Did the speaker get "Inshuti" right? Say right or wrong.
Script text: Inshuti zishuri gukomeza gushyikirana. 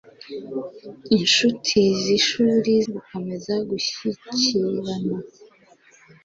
right